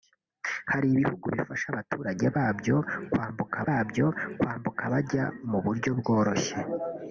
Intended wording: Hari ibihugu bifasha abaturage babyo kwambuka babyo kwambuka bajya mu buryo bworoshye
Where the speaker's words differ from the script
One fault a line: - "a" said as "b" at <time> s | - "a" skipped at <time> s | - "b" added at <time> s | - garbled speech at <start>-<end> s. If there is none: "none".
none